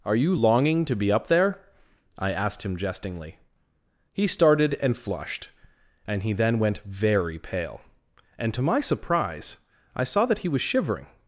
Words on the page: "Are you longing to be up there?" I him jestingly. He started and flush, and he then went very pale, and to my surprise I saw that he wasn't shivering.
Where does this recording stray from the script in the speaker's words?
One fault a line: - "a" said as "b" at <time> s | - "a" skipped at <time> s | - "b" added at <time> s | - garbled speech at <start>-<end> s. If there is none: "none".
- "asked" added at 2.3 s
- "flush" said as "flushed" at 5.0 s
- "wasn't" said as "was" at 10.5 s